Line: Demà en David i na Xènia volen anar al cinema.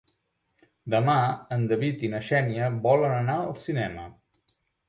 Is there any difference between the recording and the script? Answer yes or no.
no